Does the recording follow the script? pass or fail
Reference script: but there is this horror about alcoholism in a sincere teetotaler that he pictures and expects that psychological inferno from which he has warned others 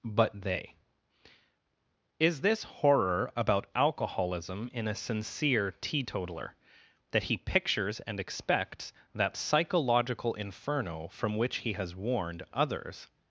fail